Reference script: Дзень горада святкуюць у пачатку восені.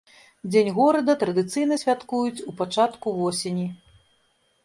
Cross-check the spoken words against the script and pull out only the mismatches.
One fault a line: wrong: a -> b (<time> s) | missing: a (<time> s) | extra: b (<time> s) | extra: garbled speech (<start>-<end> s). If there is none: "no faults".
extra: традыцыйна (1.2 s)